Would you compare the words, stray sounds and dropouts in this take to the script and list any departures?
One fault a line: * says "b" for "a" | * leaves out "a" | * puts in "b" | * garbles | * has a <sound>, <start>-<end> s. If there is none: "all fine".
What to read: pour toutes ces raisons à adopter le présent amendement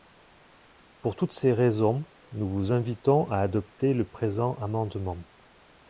* puts in "nous vous invitons"